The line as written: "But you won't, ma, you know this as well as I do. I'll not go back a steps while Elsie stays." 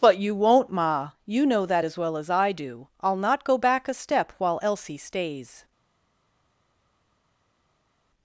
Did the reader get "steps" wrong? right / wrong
wrong